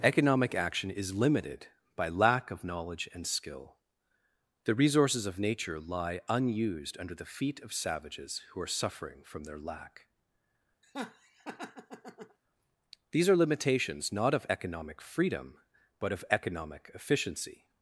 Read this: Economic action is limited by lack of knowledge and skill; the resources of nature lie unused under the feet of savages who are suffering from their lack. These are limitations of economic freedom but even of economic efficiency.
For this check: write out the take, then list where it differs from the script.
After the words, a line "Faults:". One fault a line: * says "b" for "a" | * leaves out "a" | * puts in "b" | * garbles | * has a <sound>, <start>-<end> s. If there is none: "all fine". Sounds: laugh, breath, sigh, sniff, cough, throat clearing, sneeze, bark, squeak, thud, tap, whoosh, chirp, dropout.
Economic action is limited by lack of knowledge and skill; the resources of nature lie unused under the feet of savages who are suffering from their lack. These are limitations not of economic freedom but of economic efficiency.
Faults:
* has a laugh, 10.8-12.4 s
* puts in "not"
* leaves out "even"